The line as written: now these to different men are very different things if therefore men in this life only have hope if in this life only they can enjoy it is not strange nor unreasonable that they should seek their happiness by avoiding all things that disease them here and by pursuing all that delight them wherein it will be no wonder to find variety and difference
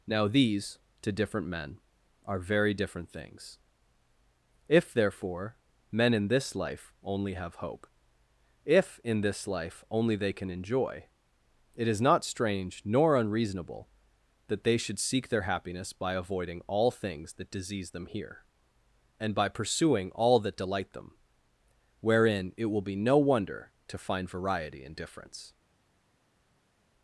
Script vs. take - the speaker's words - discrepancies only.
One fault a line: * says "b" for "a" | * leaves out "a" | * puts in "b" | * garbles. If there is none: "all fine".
all fine